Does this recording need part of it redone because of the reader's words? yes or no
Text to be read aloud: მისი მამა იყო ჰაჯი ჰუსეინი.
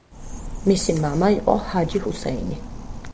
no